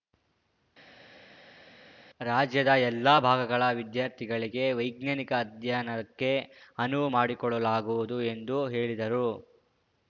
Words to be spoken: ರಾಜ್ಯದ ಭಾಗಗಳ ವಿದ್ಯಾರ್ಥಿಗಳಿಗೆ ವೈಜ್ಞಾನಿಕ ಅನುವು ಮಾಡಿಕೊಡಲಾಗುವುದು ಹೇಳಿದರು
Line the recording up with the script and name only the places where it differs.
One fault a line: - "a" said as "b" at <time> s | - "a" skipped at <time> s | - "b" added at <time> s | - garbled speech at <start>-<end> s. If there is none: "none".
- "ಎಲ್ಲ" added at 2.8 s
- "ಅಧ್ಯಯನಕ್ಕೆ" added at 5.4 s
- "ಎಂದು" added at 8.3 s